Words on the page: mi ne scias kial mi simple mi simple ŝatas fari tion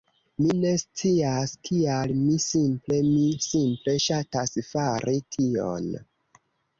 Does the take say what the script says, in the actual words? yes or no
yes